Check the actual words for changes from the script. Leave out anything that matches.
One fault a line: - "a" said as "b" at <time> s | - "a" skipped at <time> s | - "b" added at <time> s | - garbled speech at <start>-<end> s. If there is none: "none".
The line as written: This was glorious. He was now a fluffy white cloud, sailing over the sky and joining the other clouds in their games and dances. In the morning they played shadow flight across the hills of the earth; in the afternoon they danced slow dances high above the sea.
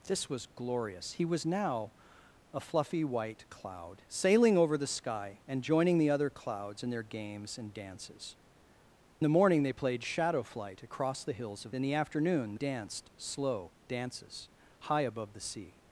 - "In" skipped at 8.3 s
- "the earth" skipped at 11.7 s
- "they" skipped at 12.6 s